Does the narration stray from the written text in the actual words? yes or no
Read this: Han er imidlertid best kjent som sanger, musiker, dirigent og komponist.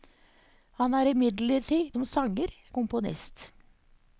yes